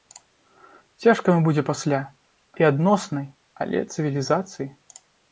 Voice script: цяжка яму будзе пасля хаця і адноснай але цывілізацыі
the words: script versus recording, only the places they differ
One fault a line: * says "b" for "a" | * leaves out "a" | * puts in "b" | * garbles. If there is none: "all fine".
* leaves out "хаця"